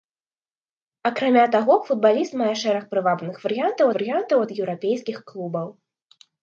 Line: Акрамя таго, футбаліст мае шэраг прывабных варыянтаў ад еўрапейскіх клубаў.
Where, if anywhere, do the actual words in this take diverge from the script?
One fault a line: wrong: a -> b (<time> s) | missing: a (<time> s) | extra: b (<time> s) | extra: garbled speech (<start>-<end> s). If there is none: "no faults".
extra: варыянтаў (3.9 s)